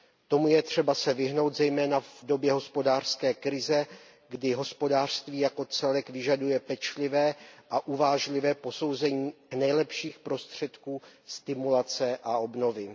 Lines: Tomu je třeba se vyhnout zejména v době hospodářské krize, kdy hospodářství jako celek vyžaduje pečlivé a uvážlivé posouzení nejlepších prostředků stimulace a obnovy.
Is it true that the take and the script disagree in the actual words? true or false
false